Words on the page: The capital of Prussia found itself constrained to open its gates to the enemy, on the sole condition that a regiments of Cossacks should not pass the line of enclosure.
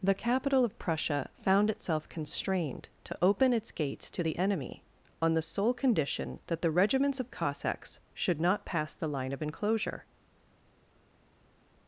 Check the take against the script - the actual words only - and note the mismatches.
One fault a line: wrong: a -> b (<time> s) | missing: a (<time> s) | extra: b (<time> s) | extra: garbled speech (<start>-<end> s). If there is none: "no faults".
wrong: a -> the (6.6 s)